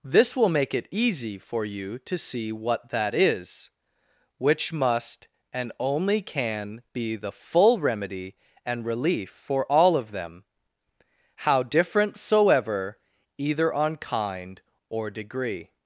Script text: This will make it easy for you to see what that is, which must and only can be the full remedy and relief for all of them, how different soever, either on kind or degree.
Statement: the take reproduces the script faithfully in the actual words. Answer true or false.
true